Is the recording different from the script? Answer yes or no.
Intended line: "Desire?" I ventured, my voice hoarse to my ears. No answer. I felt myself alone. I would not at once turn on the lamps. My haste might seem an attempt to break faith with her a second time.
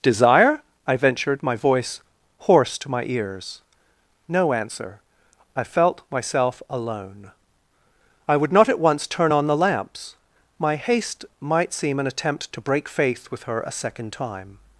no